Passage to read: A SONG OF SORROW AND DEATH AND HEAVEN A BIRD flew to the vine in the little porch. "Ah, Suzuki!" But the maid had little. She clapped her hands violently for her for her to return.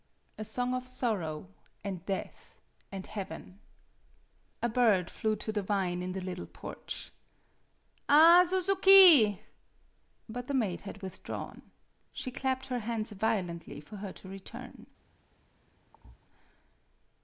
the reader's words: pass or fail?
fail